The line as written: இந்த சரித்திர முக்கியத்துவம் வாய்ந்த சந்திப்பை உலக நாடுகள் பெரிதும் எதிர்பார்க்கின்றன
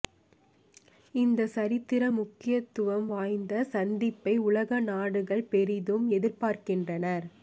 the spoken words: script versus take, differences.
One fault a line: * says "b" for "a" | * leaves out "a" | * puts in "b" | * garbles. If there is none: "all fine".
all fine